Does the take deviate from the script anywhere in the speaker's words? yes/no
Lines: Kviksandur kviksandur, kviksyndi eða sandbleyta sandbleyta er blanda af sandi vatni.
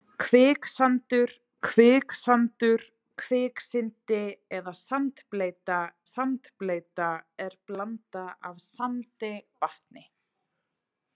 no